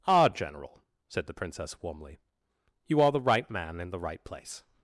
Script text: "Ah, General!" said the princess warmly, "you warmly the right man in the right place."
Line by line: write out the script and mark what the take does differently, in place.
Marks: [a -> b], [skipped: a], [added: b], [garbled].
"Ah, General!" said the princess warmly, "you [warmly -> are] the right man in the right place."